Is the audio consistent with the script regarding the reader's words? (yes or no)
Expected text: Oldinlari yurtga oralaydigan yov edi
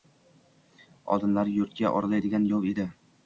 yes